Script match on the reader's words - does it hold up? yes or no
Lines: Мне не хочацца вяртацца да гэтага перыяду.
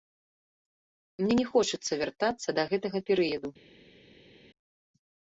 yes